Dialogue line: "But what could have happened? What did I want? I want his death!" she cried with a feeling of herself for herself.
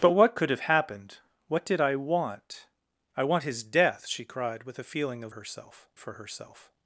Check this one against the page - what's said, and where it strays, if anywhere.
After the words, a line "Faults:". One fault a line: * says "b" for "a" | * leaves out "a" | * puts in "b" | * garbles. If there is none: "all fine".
"But what could have happened? What did I want? I want his death!" she cried with a feeling of herself for herself.
Faults:
all fine